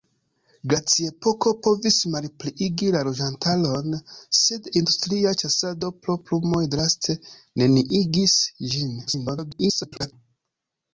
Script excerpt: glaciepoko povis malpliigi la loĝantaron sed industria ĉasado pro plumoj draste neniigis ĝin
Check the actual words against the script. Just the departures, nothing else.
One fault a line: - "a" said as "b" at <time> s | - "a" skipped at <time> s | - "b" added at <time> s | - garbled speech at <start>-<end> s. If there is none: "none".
- garbled speech at 9.1-10.1 s